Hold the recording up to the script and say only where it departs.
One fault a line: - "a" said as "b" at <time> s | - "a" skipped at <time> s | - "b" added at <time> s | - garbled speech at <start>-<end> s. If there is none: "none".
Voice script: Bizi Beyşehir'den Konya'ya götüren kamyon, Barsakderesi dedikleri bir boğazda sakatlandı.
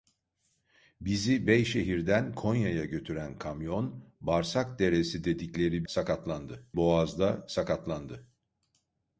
- "bir" said as "sakatlandı" at 5.9 s